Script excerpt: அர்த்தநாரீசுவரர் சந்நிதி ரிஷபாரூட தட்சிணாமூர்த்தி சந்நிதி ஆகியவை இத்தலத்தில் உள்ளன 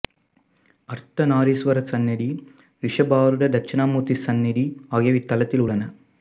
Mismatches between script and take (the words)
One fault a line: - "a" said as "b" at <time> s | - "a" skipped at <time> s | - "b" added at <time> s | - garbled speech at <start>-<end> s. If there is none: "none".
none